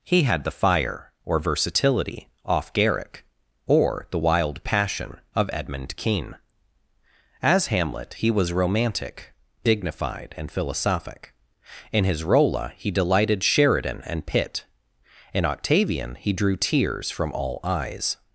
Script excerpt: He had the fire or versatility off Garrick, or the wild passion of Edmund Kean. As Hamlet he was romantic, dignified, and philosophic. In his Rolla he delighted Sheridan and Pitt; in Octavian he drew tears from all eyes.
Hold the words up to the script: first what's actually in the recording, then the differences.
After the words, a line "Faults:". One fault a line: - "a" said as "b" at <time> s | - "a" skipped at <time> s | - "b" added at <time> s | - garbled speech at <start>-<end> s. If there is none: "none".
He had the fire or versatility off Garrick, or the wild passion of Edmund Kean. As Hamlet he was romantic, dignified, and philosophic. In his Rolla he delighted Sheridan and Pitt; in Octavian he drew tears from all eyes.
Faults:
none